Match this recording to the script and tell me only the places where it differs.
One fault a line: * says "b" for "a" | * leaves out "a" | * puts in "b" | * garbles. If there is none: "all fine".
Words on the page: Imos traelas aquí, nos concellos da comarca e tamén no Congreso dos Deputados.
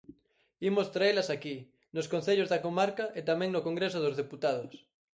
all fine